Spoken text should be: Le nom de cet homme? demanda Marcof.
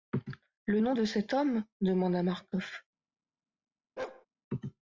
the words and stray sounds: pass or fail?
fail